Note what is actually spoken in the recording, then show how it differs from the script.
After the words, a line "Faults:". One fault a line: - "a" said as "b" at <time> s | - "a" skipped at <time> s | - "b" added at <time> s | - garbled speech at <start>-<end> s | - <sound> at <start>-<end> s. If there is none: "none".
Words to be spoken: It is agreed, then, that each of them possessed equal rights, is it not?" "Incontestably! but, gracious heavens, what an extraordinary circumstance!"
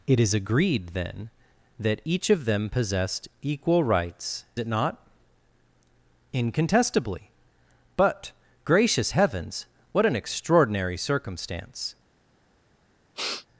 It is agreed, then, that each of them possessed equal rights, it not?" "Incontestably! but, gracious heavens, what an extraordinary circumstance!"
Faults:
- "is" skipped at 4.5 s
- sniff at 13.1-13.5 s